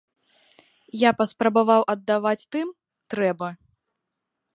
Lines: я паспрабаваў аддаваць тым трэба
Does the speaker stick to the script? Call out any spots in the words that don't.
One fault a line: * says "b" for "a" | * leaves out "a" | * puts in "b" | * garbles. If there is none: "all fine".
all fine